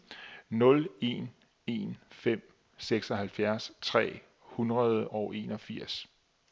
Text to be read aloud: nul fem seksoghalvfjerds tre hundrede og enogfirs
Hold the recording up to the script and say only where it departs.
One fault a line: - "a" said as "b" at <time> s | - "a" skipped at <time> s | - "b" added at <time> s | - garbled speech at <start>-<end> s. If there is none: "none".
- "en en" added at 1.0 s